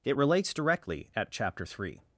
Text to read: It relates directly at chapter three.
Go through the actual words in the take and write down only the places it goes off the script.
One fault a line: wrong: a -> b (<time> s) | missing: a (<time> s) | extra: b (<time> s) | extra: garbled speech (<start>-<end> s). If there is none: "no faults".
no faults